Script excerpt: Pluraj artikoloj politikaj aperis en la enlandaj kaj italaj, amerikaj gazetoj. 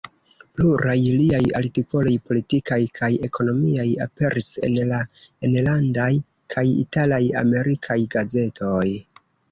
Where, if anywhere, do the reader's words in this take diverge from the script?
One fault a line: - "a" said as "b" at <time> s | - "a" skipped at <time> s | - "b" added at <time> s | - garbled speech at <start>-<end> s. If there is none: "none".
- "liaj" added at 1.2 s
- "kaj ekonomiaj" added at 3.0 s